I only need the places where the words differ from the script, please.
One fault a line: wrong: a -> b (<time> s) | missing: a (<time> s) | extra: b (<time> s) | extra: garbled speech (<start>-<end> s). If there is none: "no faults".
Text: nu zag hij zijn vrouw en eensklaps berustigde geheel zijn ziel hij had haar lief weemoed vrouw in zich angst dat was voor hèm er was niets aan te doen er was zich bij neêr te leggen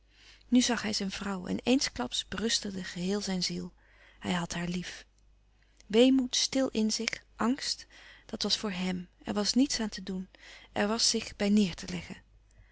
wrong: vrouw -> stil (6.3 s)